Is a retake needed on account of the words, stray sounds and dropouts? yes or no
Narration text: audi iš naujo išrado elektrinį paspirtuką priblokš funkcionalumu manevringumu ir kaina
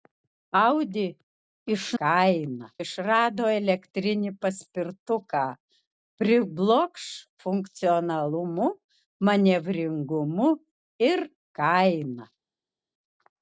yes